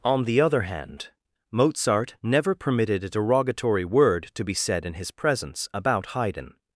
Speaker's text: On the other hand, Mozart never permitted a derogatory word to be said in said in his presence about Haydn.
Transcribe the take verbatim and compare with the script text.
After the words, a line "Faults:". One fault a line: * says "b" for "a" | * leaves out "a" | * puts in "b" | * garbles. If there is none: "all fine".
On the other hand, Mozart never permitted a derogatory word to be said in his presence about Haydn.
Faults:
* leaves out "said in"